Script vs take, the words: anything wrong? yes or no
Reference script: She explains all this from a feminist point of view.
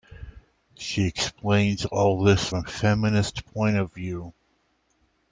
yes